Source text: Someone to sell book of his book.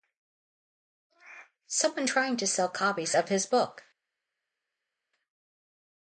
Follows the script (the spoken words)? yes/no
no